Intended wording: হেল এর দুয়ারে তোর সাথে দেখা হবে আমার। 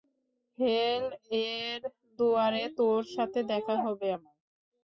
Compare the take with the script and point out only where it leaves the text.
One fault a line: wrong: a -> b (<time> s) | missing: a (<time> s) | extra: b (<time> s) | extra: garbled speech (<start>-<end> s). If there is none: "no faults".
no faults